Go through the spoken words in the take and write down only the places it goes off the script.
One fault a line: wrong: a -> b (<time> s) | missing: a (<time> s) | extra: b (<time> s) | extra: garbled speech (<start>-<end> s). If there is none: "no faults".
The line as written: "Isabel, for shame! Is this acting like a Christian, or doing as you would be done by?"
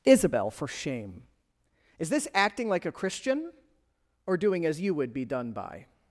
no faults